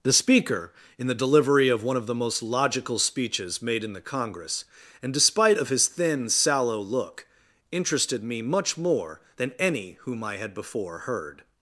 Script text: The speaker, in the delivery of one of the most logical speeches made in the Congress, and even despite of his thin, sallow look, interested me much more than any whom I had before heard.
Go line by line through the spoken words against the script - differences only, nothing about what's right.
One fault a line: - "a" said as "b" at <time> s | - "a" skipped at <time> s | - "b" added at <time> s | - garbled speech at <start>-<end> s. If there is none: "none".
- "even" skipped at 5.1 s